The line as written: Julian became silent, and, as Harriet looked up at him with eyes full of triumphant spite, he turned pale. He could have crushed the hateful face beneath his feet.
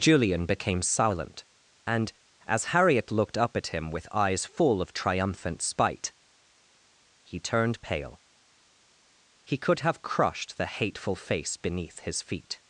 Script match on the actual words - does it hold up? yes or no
yes